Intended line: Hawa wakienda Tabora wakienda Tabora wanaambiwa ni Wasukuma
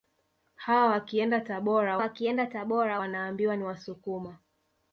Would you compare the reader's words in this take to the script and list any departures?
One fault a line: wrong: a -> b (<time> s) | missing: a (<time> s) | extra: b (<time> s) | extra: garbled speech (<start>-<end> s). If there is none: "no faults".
no faults